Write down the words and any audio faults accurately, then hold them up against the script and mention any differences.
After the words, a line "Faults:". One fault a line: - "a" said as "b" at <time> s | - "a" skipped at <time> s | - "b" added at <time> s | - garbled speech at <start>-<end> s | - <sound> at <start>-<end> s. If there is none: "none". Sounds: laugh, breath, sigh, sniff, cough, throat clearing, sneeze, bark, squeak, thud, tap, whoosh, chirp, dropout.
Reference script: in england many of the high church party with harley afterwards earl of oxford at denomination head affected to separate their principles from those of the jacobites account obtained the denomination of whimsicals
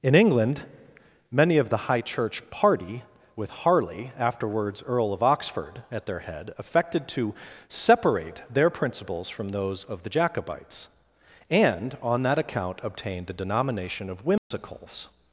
in england many of the high church party with harley afterwards earl of oxford at their head affected to separate their principles from those of the jacobites and on that account obtained the denomination of whimsicals
Faults:
- "denomination" said as "their" at 6.0 s
- "and on that" added at 11.5 s
- dropout at 14.4-14.5 s